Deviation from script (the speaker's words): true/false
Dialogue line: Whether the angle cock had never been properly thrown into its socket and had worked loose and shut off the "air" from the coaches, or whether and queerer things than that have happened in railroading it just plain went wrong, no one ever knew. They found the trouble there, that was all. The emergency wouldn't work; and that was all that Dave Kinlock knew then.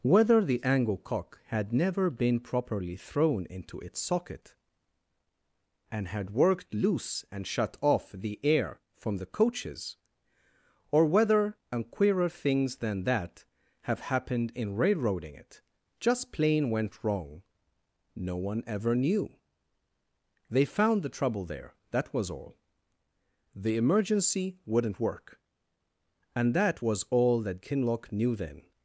true